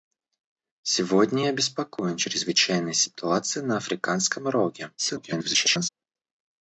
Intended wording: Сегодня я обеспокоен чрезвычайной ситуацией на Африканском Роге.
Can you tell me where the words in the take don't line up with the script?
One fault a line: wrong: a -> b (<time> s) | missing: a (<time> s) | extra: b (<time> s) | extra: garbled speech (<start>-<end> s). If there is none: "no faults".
extra: garbled speech (5.0-5.9 s)